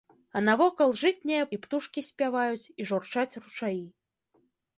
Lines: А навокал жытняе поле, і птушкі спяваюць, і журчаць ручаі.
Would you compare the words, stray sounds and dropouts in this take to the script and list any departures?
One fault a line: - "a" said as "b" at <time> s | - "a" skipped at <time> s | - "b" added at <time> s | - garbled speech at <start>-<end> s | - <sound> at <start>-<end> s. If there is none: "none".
- "поле" skipped at 1.4 s